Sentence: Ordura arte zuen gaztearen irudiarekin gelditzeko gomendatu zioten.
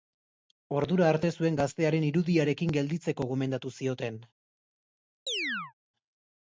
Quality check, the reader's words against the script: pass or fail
pass